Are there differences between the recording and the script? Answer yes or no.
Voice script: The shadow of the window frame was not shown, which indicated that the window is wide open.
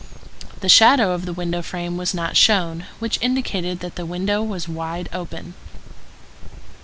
yes